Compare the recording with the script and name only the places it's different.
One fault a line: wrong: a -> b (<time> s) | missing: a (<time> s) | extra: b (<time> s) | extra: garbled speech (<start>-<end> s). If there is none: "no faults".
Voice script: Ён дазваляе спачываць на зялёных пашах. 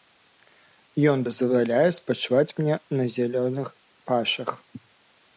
extra: мне (2.6 s)